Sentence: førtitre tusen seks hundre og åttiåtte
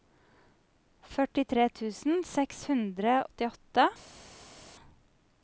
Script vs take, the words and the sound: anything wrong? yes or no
yes